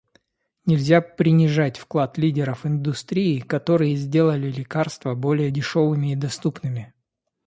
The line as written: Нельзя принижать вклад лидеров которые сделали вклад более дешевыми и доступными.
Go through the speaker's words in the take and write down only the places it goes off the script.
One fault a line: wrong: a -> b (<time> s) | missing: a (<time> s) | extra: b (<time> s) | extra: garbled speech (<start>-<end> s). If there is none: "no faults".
extra: индустрии (2.6 s)
wrong: вклад -> лекарства (4.5 s)